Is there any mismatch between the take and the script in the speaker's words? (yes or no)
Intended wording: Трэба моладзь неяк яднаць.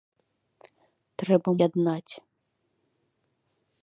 yes